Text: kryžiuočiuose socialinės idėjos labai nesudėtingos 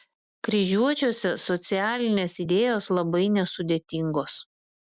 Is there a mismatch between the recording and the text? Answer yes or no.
no